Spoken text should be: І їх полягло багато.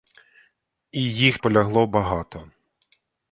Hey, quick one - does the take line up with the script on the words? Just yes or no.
yes